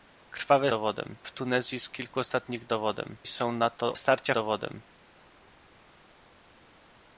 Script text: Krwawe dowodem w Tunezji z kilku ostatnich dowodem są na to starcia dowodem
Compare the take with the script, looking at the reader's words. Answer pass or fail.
pass